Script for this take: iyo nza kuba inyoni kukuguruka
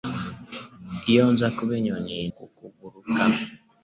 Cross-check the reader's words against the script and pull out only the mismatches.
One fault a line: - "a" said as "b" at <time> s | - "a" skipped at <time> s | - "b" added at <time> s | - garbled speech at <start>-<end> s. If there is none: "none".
none